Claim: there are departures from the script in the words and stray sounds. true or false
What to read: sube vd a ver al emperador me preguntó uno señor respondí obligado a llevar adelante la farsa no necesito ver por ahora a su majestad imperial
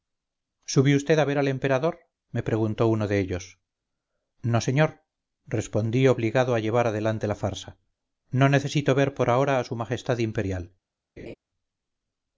true